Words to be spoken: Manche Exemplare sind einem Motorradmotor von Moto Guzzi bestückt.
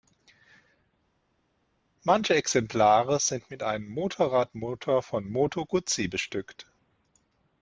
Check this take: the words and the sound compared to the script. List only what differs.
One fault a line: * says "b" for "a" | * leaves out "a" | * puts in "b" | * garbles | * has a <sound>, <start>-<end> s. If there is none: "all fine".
* puts in "mit"